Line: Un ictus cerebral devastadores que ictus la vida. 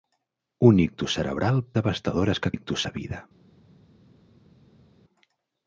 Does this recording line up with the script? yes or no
yes